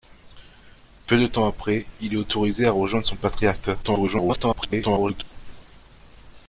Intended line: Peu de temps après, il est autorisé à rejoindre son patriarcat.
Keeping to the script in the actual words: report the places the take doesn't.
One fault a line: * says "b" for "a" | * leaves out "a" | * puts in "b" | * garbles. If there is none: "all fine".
* garbles